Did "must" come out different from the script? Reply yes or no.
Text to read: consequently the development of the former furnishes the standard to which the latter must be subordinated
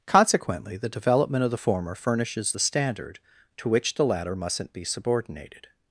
yes